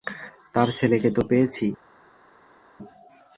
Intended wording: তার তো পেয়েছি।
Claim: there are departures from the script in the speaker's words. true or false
true